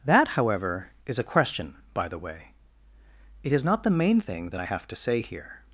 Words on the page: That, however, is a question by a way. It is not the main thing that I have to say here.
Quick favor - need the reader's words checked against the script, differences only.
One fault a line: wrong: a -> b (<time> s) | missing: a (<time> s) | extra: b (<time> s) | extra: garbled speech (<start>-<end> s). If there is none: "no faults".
wrong: a -> the (2.1 s)